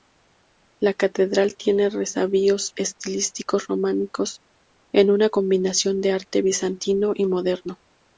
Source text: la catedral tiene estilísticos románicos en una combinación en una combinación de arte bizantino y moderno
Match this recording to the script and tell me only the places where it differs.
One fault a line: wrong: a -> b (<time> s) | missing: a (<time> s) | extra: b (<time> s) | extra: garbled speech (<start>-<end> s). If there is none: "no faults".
extra: resabios (1.9 s)
missing: en una combinación (6.0 s)